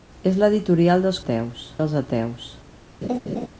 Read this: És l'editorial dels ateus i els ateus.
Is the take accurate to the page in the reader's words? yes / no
yes